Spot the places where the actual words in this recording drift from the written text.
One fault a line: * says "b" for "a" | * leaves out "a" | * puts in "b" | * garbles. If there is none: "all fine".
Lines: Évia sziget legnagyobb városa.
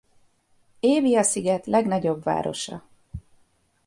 all fine